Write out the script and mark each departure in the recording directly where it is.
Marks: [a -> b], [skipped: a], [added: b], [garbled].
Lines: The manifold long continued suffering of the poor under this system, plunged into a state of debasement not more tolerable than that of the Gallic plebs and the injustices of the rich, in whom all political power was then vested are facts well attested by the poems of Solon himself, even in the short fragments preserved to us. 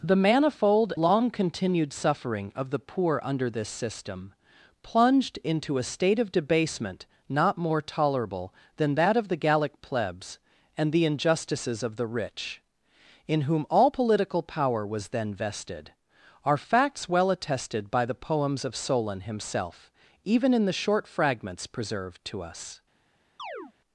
The manifold long continued suffering of the poor under this system, plunged into a state of debasement not more tolerable than that of the Gallic plebs and the injustices of the rich, in whom all political power was then vested are facts well attested by the poems of Solon himself, even in the short fragments preserved to us.